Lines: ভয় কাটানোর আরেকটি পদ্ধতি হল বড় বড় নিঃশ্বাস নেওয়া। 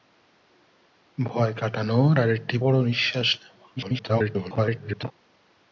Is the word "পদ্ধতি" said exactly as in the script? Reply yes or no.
no